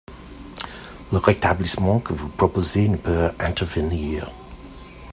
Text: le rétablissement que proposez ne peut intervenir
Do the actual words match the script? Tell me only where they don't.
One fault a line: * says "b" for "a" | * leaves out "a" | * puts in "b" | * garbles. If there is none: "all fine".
* puts in "vous"